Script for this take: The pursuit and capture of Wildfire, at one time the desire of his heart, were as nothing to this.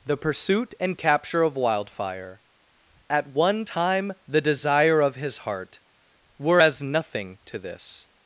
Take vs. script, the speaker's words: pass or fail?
pass